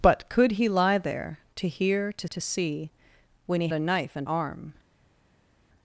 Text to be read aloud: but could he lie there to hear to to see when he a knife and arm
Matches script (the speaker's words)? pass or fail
pass